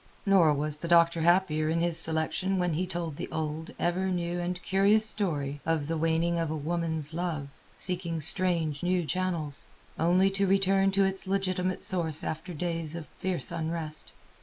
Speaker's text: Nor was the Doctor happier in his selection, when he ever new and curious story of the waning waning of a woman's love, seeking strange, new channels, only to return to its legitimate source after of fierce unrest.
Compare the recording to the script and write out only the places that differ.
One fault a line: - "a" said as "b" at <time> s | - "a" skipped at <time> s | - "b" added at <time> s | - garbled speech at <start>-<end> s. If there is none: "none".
- "told the old" added at 2.9 s
- "waning" skipped at 6.4 s
- "days" added at 12.5 s